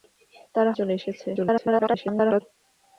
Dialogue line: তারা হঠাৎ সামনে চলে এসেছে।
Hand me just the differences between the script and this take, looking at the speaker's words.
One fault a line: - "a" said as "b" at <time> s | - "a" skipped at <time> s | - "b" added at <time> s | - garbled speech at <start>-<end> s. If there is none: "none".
- "হঠাৎ সামনে" skipped at 0.7 s
- garbled speech at 1.3-2.4 s